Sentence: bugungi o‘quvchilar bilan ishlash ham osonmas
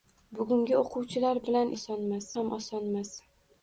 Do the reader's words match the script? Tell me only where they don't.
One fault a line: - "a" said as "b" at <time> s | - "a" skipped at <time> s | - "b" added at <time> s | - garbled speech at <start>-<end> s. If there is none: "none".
- "ishlash" said as "osonmas" at 1.8 s